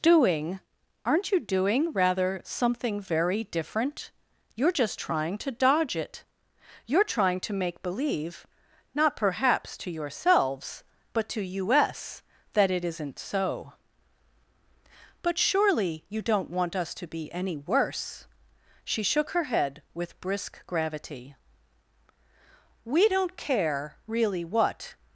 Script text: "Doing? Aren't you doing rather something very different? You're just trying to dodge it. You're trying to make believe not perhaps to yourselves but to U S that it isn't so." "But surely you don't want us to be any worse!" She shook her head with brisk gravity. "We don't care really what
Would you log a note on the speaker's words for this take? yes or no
no